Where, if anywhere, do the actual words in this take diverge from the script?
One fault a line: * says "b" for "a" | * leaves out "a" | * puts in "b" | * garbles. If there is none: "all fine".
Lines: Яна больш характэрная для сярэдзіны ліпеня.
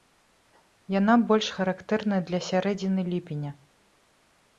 all fine